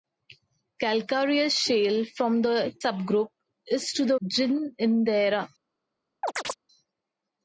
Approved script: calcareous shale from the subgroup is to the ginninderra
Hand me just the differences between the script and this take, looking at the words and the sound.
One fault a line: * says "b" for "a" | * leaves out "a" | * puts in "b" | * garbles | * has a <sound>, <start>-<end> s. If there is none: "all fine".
* has a chirp, 6.2-6.5 s